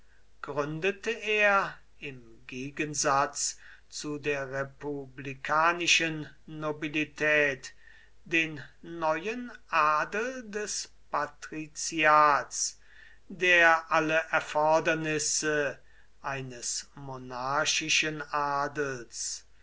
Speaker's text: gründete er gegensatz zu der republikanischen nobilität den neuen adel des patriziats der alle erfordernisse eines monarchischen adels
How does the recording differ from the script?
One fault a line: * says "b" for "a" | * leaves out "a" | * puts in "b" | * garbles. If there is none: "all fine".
* puts in "im"